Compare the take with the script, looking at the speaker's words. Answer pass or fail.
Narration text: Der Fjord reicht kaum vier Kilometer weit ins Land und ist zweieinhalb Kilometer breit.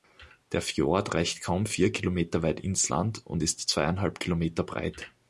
pass